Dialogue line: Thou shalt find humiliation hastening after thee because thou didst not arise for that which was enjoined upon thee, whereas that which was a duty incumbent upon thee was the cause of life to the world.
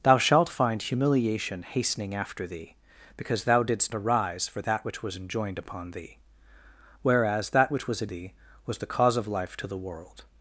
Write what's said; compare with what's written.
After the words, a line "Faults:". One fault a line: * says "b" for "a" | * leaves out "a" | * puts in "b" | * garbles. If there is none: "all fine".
Thou shalt find humiliation hastening after thee because thou didst arise for that which was enjoined upon thee, whereas that which was a thee was the cause of life to the world.
Faults:
* leaves out "not"
* leaves out "duty incumbent upon"